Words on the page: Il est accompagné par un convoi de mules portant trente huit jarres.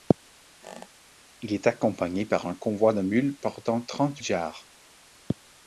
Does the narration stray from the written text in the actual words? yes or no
yes